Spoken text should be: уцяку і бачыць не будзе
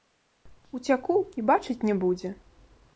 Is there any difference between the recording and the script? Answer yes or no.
no